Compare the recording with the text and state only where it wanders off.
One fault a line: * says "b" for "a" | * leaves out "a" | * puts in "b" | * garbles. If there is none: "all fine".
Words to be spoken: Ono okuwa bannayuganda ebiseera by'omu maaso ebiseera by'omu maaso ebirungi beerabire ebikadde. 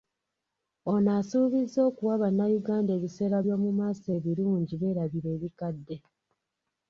* puts in "asuubizza"
* leaves out "ebiseera by'omu maaso"